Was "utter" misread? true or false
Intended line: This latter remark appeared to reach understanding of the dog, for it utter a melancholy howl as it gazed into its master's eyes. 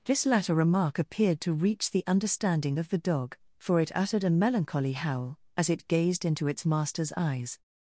true